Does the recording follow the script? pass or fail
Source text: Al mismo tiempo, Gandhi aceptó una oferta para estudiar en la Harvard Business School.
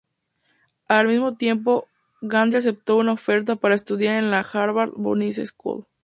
pass